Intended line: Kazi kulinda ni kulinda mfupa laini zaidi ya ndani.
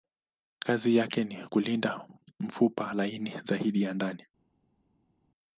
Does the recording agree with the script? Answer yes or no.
no